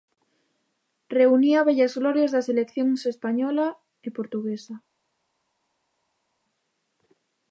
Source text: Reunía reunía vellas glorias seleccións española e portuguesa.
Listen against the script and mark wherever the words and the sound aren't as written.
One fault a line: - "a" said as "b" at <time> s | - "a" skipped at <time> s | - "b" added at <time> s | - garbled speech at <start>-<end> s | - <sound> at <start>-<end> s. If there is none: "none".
- "reunía" skipped at 1.6 s
- "das" added at 2.4 s